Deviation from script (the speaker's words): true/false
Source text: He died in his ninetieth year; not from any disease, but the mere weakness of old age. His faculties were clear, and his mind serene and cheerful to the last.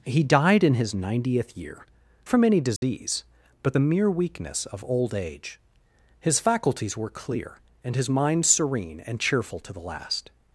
true